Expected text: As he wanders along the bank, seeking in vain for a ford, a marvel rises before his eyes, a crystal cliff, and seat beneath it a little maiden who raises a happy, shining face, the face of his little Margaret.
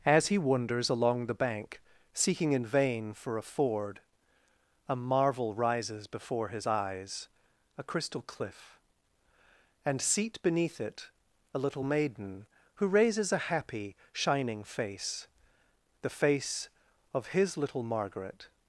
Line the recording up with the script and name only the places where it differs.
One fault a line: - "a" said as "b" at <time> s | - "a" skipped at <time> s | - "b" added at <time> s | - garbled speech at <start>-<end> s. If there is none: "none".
none